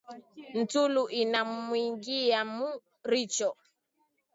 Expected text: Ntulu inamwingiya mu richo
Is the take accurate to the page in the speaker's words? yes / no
yes